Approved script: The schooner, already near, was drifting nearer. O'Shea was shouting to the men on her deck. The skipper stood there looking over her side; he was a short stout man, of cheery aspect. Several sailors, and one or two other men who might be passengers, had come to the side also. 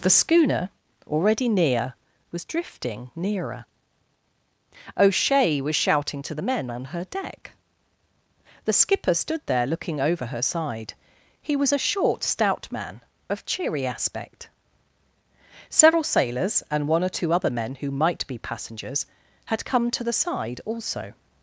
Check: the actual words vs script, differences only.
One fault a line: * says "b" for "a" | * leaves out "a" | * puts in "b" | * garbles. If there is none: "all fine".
all fine